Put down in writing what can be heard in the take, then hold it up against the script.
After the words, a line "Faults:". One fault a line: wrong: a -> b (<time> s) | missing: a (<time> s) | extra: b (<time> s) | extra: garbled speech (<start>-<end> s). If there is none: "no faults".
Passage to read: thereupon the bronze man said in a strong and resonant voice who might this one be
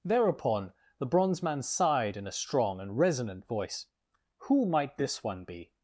thereupon the bronze man sighed in a strong and resonant voice who might this one be
Faults:
wrong: said -> sighed (1.6 s)